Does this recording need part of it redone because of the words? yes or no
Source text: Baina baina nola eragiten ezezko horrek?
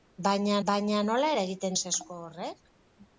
no